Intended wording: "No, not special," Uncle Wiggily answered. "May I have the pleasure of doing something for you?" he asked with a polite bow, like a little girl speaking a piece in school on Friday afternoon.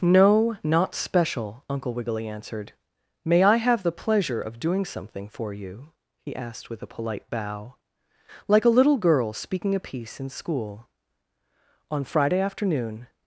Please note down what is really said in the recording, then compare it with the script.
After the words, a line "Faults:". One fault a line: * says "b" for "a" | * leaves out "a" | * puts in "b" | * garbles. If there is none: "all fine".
"No, not special," Uncle Wiggily answered. "May I have the pleasure of doing something for you?" he asked with a polite bow, like a little girl speaking a piece in school on Friday afternoon.
Faults:
all fine